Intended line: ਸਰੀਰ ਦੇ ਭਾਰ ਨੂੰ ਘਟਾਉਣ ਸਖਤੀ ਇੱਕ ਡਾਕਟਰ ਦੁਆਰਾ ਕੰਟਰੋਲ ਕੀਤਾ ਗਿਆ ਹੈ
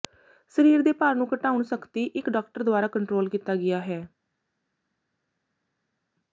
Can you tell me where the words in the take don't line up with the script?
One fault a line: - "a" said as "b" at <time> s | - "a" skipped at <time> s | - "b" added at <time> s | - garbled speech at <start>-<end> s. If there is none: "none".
none